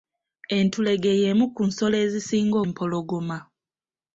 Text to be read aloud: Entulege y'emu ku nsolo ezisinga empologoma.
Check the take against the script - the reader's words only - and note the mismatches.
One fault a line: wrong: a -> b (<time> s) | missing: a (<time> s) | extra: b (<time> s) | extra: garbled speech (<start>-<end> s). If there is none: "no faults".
no faults